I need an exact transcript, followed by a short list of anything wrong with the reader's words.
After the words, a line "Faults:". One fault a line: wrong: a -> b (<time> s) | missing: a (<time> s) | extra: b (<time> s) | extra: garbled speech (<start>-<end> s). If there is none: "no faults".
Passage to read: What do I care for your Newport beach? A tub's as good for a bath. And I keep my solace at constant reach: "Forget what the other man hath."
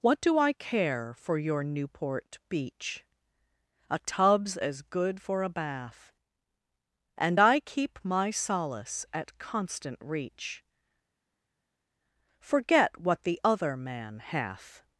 What do I care for your Newport beach? A tub's as good for a bath. And I keep my solace at constant reach: "Forget what the other man hath."
Faults:
no faults